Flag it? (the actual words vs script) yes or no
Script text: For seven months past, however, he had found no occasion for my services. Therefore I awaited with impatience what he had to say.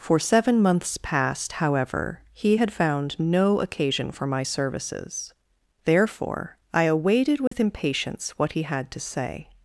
no